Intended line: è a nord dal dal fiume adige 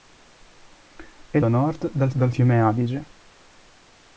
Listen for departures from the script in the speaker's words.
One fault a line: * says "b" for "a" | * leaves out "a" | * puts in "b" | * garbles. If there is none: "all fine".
all fine